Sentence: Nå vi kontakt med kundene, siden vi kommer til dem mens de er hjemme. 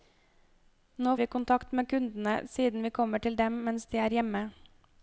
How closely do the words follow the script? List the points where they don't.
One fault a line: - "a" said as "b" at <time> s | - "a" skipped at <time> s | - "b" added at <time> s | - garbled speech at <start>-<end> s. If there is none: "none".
none